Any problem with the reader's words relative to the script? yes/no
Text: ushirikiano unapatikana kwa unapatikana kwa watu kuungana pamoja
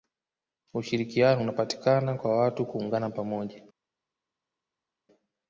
yes